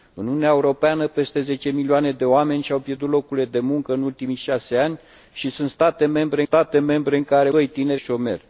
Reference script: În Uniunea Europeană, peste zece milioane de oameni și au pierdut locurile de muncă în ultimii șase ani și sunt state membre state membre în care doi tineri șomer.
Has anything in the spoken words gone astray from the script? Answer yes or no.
no